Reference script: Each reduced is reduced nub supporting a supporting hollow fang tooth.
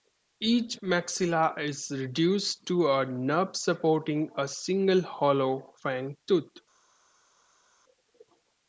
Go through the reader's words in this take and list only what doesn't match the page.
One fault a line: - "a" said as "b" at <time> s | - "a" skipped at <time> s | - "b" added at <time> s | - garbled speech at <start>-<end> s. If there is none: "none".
- "reduced" said as "maxilla" at 0.8 s
- "to a" added at 2.7 s
- "supporting" said as "single" at 4.5 s